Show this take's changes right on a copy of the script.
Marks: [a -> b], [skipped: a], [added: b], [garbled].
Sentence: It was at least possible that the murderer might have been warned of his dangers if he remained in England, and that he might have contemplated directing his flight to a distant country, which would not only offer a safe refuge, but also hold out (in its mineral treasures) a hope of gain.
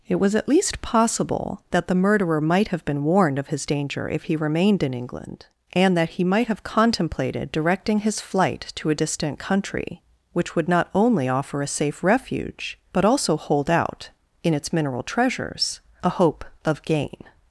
It was at least possible that the murderer might have been warned of his [dangers -> danger] if he remained in England, and that he might have contemplated directing his flight to a distant country, which would not only offer a safe refuge, but also hold out (in its mineral treasures) a hope of gain.